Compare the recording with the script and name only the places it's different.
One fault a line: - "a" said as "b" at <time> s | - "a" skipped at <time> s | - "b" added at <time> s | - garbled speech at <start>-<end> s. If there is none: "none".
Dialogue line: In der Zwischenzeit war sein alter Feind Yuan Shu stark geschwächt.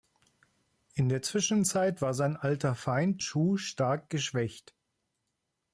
- "Yuan" skipped at 3.2 s